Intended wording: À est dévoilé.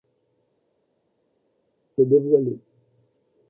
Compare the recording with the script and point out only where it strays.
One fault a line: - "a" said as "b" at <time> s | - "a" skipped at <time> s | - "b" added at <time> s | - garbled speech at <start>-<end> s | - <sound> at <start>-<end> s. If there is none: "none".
none